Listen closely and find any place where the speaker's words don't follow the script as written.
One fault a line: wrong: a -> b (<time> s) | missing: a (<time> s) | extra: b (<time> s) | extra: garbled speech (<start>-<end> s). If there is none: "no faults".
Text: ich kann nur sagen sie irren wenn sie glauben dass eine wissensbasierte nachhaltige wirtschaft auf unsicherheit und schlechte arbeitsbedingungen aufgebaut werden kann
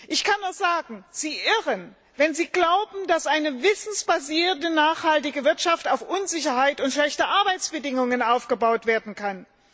no faults